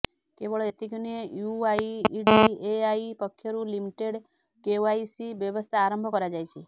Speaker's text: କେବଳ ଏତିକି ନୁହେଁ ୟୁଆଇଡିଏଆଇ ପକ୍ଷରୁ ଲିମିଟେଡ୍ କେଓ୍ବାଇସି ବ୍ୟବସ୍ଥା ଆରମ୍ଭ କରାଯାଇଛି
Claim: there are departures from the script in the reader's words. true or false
false